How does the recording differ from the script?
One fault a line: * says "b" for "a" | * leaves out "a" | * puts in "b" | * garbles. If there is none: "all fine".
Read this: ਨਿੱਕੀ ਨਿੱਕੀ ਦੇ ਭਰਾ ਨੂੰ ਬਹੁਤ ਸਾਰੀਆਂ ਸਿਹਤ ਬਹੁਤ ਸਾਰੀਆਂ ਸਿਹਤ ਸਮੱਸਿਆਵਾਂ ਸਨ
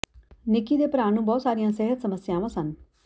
* leaves out "ਨਿੱਕੀ"
* leaves out "ਬਹੁਤ ਸਾਰੀਆਂ ਸਿਹਤ"